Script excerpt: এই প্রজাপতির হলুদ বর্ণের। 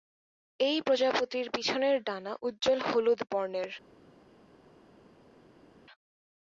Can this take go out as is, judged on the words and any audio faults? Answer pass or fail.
fail